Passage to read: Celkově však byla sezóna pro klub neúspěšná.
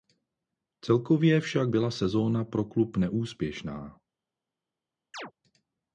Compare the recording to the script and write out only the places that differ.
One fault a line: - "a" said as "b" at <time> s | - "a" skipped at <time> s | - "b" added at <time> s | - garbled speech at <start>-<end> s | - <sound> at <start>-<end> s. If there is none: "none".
- chirp at 5.1-5.3 s